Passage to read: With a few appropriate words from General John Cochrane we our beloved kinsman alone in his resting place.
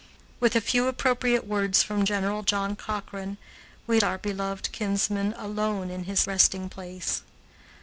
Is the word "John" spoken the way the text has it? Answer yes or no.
yes